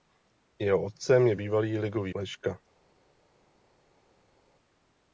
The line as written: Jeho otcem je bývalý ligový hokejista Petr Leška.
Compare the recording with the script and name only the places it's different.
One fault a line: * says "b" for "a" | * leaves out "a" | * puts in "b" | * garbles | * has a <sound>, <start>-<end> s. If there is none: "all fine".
* leaves out "hokejista Petr"